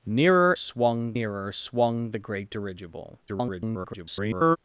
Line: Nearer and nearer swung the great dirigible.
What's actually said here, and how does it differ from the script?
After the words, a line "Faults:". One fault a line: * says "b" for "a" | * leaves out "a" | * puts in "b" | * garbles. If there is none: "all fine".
Nearer swung nearer swung the great dirigible. [garbled]
Faults:
* says "swung" for "and"
* garbles